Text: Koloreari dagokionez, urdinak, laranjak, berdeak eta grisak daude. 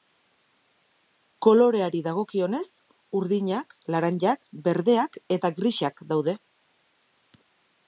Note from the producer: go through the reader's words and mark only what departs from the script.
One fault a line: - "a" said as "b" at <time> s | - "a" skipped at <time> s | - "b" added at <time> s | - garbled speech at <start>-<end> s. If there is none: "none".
none